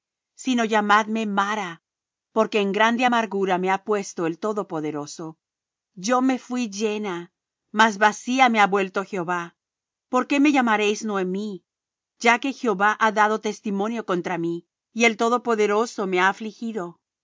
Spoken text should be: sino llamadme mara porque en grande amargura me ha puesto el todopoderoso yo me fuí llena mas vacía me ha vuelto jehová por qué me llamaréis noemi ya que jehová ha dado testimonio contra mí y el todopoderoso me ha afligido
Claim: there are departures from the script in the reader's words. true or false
false